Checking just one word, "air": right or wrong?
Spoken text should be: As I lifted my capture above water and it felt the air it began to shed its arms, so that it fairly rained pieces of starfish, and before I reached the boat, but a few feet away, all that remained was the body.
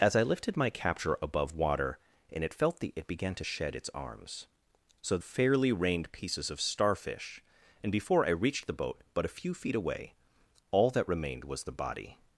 wrong